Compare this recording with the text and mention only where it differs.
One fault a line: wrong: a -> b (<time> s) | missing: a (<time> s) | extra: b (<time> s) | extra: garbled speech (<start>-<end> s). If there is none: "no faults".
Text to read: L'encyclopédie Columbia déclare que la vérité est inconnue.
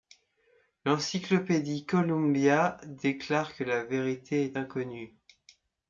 no faults